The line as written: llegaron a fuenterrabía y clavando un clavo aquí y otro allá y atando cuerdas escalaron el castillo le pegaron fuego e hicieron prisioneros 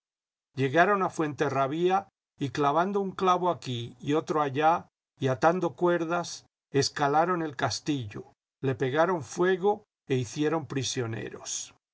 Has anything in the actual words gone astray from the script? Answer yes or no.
no